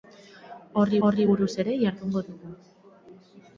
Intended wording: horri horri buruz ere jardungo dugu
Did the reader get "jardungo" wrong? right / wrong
right